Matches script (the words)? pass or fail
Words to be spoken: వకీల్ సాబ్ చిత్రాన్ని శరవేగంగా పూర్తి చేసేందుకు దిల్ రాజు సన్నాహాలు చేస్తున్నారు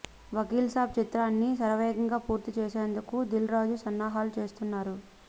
pass